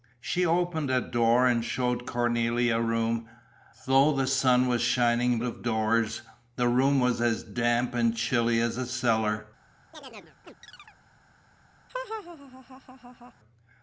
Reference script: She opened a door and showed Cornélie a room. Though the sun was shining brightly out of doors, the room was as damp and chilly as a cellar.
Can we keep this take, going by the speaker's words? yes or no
no